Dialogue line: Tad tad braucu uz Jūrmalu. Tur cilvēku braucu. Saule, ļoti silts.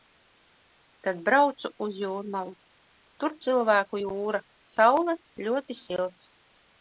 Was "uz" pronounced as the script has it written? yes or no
yes